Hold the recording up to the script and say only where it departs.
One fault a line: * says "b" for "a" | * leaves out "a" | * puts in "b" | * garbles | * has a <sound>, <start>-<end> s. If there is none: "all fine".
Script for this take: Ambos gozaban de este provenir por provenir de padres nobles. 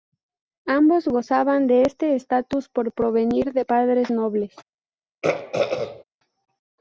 * says "estatus" for "provenir"
* has a throat clearing, 5.2-6.0 s